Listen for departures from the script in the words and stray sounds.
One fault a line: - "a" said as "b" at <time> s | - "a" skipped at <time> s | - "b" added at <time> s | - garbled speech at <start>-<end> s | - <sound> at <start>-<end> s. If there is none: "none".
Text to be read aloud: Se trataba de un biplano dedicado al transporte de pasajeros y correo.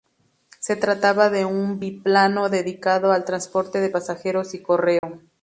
- dropout at 5.0-5.0 s